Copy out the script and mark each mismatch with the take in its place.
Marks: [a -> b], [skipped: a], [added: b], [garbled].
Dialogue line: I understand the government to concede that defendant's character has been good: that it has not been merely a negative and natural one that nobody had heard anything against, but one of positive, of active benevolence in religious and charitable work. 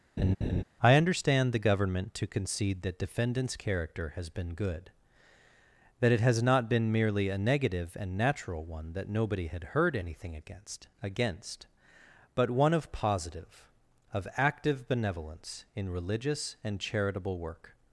I understand the government to concede that defendant's character has been good: that it has not been merely a negative and natural one that nobody had heard anything against, [added: against] but one of positive, of active benevolence in religious and charitable work.